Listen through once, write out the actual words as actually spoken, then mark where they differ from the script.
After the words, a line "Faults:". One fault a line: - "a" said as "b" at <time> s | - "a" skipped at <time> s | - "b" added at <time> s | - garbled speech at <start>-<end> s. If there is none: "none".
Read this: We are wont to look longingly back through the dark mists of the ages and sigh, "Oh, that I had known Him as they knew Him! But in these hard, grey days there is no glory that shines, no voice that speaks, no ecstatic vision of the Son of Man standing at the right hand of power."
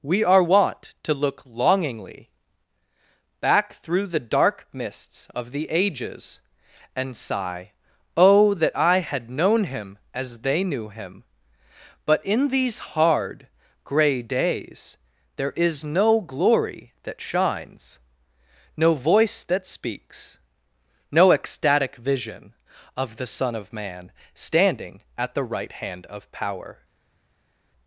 We are wont to look longingly back through the dark mists of the ages and sigh, "Oh, that I had known Him as they knew Him! But in these hard, grey days there is no glory that shines, no voice that speaks, no ecstatic vision of the Son of Man standing at the right hand of power."
Faults:
none